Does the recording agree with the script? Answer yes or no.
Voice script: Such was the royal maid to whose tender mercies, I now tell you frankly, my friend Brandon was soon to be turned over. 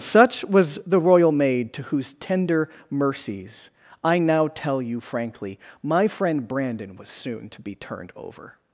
yes